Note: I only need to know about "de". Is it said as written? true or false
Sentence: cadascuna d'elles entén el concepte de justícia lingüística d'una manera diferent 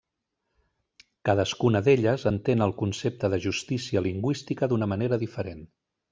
true